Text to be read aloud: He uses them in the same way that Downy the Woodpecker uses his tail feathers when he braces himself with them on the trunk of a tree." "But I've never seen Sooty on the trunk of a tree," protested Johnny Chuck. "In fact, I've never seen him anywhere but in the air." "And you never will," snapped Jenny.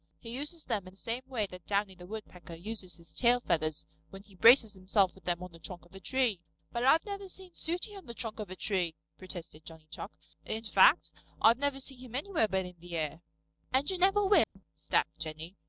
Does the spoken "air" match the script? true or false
true